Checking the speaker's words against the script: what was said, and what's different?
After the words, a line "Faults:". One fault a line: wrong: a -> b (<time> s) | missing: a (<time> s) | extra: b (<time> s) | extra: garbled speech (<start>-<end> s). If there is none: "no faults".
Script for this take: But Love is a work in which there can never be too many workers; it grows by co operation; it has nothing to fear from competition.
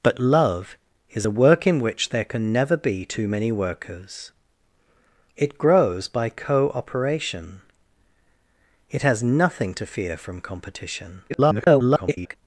But Love is a work in which there can never be too many workers; it grows by co operation; it has nothing to fear from competition. [garbled]
Faults:
extra: garbled speech (11.3-12.4 s)